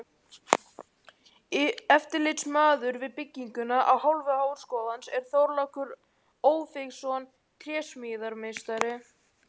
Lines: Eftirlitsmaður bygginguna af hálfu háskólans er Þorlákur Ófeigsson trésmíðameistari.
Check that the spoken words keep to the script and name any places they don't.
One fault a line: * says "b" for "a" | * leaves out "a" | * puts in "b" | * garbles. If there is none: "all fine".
* puts in "við"